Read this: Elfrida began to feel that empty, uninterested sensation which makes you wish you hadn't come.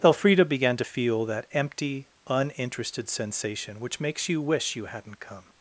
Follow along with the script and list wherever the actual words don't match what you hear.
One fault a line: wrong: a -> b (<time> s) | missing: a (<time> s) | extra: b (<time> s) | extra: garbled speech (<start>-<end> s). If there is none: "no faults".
no faults